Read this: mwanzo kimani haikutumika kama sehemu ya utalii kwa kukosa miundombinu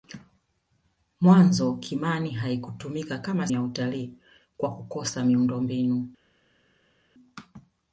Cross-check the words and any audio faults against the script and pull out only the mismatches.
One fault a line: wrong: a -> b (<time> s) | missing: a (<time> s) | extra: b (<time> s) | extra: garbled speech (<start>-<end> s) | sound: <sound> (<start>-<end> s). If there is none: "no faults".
missing: sehemu (3.5 s)